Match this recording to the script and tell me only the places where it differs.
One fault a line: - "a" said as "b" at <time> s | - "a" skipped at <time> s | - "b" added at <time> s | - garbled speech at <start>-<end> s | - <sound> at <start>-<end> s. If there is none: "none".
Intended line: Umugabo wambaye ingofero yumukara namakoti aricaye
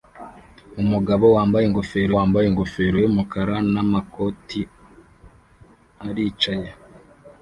- "wambaye ingofero" added at 2.1 s